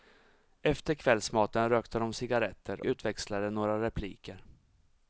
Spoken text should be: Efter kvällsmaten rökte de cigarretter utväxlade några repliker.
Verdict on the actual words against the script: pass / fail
pass